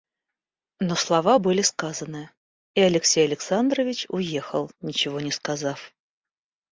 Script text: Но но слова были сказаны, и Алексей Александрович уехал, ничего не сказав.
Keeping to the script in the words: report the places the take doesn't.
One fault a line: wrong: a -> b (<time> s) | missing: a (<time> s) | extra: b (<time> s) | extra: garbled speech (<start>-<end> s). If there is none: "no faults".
missing: но (0.9 s)